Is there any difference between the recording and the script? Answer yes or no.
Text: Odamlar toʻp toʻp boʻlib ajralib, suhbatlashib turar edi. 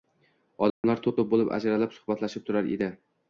no